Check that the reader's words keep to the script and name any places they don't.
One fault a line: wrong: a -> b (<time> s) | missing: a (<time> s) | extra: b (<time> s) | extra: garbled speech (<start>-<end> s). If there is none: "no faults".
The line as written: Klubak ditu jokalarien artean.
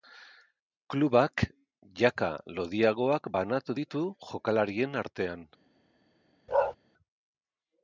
extra: jaka lodiagoak banatu (2.0 s)